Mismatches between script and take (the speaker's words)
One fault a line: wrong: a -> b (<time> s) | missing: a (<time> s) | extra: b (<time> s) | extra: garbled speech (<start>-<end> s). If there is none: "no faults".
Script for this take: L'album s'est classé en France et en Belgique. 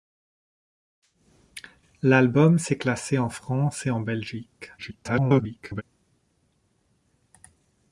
extra: garbled speech (4.8-5.8 s)